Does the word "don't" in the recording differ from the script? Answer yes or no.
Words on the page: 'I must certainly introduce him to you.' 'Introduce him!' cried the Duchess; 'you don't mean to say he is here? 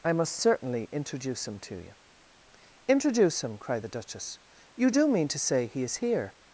yes